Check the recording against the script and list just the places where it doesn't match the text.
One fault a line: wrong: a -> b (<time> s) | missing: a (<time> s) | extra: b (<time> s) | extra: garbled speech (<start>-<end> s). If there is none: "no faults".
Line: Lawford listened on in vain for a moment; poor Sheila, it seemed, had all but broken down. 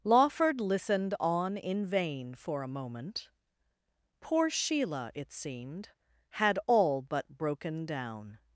no faults